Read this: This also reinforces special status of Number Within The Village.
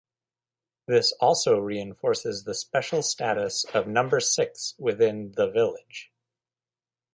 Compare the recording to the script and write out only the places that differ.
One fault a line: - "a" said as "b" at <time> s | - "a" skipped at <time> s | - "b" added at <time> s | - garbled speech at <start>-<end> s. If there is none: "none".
- "the" added at 2.4 s
- "Six" added at 4.2 s